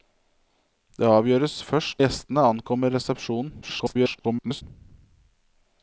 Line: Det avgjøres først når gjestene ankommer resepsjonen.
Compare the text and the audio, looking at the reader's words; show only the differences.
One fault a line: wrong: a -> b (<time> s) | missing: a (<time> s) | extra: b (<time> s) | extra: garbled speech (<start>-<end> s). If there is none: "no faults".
missing: når (2.0 s)
extra: garbled speech (3.6-4.6 s)